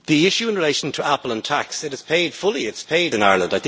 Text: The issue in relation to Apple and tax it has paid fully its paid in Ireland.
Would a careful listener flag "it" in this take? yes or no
no